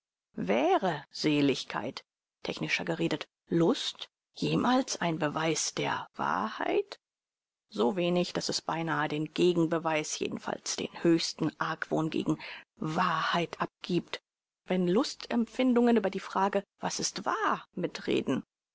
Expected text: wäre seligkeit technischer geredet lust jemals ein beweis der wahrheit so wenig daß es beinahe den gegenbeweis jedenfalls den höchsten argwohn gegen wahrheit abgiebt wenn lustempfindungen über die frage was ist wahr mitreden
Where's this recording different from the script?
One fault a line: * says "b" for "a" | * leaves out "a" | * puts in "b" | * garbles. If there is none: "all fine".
all fine